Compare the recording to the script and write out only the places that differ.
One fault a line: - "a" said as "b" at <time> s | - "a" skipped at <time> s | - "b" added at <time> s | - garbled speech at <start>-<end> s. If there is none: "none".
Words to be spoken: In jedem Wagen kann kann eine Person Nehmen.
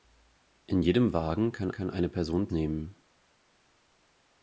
none